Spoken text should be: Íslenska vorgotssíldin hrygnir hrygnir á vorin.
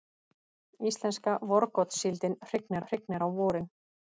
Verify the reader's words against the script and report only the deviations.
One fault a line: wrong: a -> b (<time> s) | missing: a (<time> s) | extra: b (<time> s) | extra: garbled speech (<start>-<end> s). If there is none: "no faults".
no faults